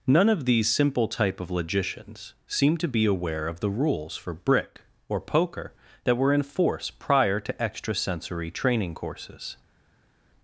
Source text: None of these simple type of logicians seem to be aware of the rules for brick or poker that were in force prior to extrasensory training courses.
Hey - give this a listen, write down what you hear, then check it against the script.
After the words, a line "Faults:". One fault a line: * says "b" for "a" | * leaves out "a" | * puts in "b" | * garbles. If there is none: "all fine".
None of these simple type of logicians seem to be aware of the rules for brick or poker that were in force prior to extrasensory training courses.
Faults:
all fine